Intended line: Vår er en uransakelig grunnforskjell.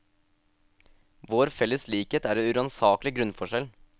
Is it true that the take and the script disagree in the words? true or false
true